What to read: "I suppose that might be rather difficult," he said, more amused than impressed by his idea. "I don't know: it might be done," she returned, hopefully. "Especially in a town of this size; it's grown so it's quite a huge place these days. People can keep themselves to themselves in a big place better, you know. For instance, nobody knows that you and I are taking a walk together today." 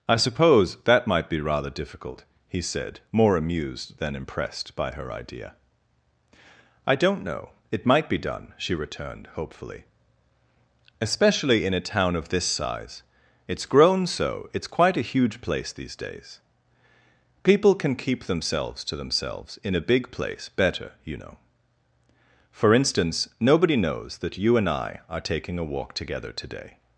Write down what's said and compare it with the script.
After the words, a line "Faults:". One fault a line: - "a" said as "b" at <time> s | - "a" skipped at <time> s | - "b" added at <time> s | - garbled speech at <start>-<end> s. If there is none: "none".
"I suppose that might be rather difficult," he said, more amused than impressed by her idea. "I don't know: it might be done," she returned, hopefully. "Especially in a town of this size; it's grown so it's quite a huge place these days. People can keep themselves to themselves in a big place better, you know. For instance, nobody knows that you and I are taking a walk together today."
Faults:
- "his" said as "her" at 4.9 s